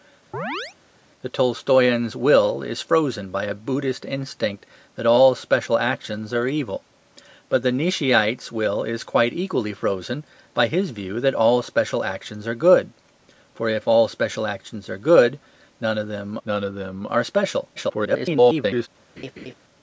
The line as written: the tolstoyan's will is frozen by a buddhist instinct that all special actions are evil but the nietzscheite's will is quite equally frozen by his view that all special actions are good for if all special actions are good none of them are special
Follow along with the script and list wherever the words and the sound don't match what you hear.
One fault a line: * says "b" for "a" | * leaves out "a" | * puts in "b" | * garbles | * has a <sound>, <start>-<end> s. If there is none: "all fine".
* has a chirp, 0.3-0.8 s
* puts in "none of them"
* garbles
* has a laugh, 19.2-19.5 s